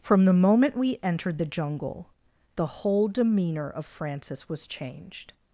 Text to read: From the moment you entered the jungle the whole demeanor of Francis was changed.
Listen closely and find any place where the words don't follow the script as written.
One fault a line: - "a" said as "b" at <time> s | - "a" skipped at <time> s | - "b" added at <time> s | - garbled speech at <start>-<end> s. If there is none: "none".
- "you" said as "we" at 0.8 s